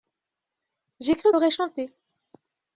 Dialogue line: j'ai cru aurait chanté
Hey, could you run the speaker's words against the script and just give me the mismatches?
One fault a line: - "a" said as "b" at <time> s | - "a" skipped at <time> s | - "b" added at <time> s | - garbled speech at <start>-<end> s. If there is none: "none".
none